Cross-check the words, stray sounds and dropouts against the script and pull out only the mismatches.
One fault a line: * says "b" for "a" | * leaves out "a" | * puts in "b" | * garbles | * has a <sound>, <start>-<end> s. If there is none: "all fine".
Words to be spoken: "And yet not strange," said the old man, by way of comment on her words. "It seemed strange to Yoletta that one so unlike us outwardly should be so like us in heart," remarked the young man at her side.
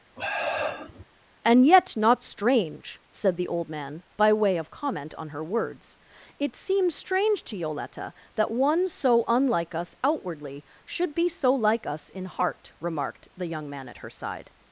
* has a sniff, 0.2-1.0 s
* says "seems" for "seemed"